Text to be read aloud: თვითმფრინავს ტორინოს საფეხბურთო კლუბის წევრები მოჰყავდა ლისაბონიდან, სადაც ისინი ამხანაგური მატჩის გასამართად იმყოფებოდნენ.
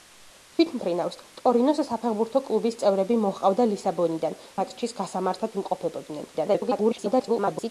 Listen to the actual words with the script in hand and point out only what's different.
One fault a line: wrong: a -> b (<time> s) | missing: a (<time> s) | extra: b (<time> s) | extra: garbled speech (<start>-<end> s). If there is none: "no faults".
missing: სადაც ისინი ამხანაგური (4.4 s)
extra: garbled speech (6.3-7.7 s)